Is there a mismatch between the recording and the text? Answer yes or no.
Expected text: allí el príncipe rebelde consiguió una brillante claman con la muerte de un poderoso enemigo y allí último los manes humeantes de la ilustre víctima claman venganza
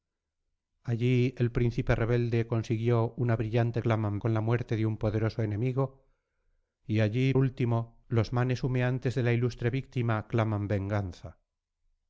no